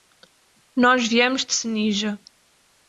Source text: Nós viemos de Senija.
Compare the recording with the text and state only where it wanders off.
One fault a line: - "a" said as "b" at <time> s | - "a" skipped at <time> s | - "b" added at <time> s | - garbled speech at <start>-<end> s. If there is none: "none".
none